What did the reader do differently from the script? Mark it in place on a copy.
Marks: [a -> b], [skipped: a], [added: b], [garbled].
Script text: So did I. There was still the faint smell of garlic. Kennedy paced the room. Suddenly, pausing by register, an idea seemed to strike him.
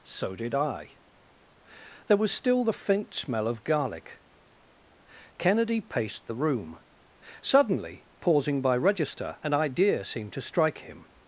So did I. There was still the faint smell of garlic. Kennedy paced the room. Suddenly, pausing by register, an idea seemed to strike him.